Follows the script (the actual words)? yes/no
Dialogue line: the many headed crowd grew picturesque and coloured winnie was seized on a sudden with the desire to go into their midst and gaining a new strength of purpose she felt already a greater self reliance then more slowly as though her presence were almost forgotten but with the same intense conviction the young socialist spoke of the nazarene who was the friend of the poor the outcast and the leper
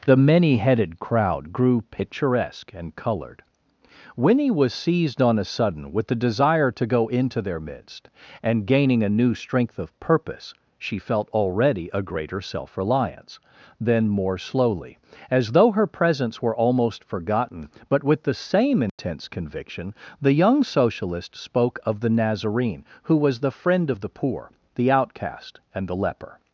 yes